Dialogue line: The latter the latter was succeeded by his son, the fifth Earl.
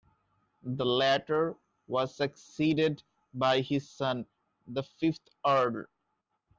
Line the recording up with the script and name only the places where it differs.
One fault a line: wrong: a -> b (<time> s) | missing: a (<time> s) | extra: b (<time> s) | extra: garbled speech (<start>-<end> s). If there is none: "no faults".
missing: the latter (1.6 s)